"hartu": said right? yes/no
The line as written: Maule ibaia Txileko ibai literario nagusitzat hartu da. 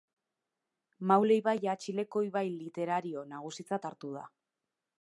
yes